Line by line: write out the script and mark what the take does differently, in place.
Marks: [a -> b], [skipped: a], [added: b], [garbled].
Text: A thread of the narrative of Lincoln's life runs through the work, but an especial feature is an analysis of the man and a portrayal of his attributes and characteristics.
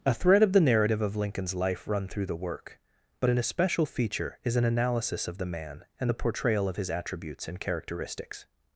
A thread of the narrative of Lincoln's life [runs -> run] through the work, but an especial feature is an analysis of the man and [a -> the] portrayal of his attributes and characteristics.